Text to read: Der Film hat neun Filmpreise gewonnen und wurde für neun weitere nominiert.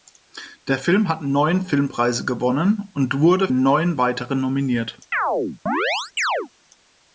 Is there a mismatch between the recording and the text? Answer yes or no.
yes